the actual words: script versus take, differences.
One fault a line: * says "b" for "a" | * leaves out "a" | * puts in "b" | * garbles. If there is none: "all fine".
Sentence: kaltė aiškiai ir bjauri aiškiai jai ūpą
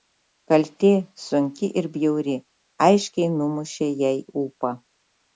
* says "sunki" for "aiškiai"
* puts in "numušė"